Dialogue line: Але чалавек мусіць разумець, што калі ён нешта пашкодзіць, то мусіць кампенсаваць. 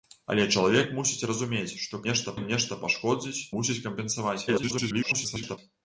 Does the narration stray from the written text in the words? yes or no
yes